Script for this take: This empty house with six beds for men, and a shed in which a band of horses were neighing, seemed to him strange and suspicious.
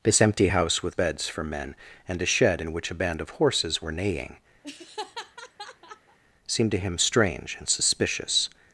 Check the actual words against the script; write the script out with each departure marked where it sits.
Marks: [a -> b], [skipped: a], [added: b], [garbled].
This empty house with [skipped: six] beds for men, and a shed in which a band of horses were neighing, seemed to him strange and suspicious.